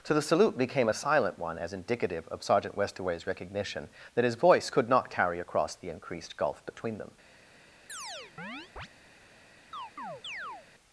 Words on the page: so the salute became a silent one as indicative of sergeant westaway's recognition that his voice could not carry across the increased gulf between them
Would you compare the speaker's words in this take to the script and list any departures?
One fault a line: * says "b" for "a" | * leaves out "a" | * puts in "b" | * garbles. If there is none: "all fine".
all fine